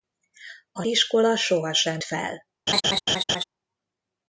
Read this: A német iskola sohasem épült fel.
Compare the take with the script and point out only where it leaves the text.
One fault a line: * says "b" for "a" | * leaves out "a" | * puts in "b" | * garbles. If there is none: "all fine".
* leaves out "német"
* leaves out "épült"